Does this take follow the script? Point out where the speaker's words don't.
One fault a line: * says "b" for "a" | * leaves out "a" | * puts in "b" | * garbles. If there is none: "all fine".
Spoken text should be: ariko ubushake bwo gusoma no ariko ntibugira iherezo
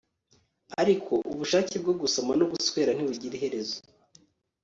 * says "guswera" for "ariko"